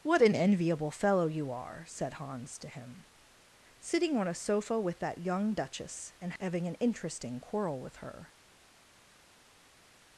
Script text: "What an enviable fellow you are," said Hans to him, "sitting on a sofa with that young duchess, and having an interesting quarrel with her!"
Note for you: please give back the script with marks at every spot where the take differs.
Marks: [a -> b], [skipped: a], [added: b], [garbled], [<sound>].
"What an enviable fellow you are," said Hans to him, "sitting on a sofa with that young duchess, and having an interesting quarrel with her!"